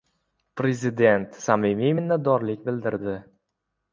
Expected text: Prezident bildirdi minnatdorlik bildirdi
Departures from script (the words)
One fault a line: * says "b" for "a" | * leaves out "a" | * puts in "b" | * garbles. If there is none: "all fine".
* says "samimiy" for "bildirdi"